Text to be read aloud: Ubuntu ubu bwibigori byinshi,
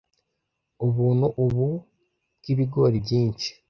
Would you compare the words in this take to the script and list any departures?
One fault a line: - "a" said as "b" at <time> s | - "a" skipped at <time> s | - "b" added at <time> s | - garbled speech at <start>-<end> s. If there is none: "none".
none